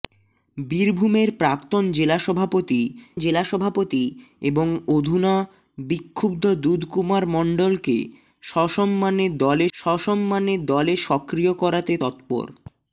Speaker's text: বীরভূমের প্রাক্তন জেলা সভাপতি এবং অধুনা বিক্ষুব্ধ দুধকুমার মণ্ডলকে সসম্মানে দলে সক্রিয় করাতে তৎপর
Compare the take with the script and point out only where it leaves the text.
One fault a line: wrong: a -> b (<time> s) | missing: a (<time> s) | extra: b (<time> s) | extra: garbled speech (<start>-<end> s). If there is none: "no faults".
extra: জেলা সভাপতি (3.2 s)
extra: সসম্মানে দলে (9.7 s)